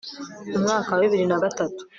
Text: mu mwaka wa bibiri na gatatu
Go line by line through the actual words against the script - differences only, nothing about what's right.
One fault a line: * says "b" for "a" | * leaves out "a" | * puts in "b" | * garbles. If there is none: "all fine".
all fine